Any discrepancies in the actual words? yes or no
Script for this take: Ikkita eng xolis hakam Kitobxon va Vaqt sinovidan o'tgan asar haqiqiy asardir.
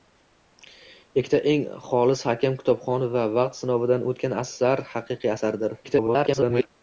yes